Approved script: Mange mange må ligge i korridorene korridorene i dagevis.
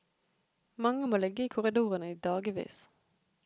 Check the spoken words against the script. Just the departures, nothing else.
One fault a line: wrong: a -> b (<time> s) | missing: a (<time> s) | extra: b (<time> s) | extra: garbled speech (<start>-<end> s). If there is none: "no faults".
missing: mange (1.1 s)
missing: korridorene (2.1 s)